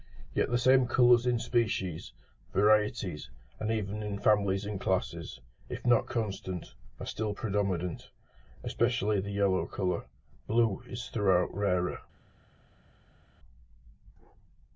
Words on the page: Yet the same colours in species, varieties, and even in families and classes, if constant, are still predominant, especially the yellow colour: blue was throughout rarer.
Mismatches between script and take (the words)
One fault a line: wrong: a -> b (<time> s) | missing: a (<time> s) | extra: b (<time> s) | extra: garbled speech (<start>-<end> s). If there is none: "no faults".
extra: not (5.9 s)
wrong: was -> is (10.9 s)